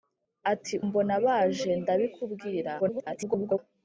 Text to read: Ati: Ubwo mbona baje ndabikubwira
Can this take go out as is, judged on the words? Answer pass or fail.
fail